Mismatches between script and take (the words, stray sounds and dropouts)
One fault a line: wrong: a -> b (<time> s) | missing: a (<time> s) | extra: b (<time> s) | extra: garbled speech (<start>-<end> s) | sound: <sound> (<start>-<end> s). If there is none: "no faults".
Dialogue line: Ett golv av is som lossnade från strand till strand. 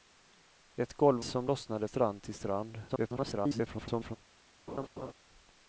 missing: av is (1.2 s)
missing: från (1.9 s)
extra: garbled speech (2.9-4.2 s)
sound: laugh (4.7-5.1 s)